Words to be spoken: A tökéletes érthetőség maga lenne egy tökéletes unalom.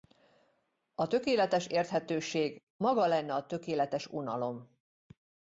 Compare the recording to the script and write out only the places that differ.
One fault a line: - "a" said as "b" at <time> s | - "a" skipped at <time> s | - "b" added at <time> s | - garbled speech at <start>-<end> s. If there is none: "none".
- "egy" said as "a" at 3.3 s